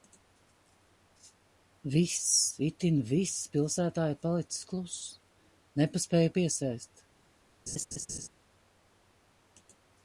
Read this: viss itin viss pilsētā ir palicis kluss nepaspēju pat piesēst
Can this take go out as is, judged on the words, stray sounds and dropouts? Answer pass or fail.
fail